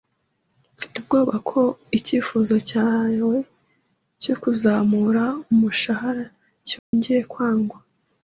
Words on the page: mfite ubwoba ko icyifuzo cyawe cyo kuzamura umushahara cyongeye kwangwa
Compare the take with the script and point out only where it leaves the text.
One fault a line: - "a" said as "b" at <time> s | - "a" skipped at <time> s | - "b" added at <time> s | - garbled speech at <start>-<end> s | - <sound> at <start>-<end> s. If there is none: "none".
- dropout at 6.8-6.9 s